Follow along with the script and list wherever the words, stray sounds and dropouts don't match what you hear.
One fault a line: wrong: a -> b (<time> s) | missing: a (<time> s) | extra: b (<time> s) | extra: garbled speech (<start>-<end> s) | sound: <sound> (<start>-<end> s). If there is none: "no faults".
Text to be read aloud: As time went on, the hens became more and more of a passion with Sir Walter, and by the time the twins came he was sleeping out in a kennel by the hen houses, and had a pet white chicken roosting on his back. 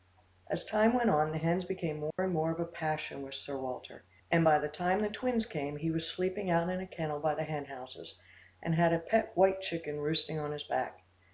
sound: dropout (2.1-2.2 s)